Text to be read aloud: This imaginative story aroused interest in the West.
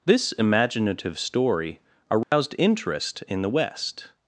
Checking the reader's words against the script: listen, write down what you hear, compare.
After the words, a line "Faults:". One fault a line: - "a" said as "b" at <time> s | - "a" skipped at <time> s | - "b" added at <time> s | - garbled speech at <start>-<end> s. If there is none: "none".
This imaginative story aroused interest in the West.
Faults:
none